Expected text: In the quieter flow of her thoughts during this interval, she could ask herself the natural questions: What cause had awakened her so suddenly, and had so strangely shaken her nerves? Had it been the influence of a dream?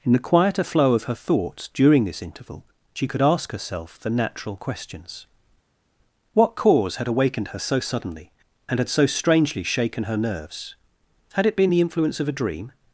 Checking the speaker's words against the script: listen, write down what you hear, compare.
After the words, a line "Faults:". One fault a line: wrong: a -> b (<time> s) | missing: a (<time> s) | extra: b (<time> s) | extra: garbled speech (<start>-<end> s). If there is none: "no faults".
In the quieter flow of her thoughts during this interval, she could ask herself the natural questions: What cause had awakened her so suddenly, and had so strangely shaken her nerves? Had it been the influence of a dream?
Faults:
no faults